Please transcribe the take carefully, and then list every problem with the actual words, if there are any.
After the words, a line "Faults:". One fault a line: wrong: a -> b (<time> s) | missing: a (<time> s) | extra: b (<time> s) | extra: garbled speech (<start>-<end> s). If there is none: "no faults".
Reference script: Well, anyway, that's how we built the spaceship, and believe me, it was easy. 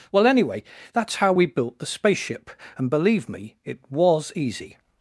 Well, anyway, that's how we built the spaceship, and believe me, it was easy.
Faults:
no faults